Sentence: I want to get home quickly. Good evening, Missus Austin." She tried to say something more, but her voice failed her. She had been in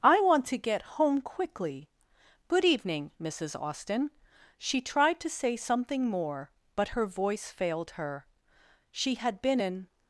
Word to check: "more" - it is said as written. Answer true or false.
true